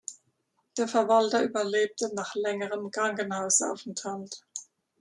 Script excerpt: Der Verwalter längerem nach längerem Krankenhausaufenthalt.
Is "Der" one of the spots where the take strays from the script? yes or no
no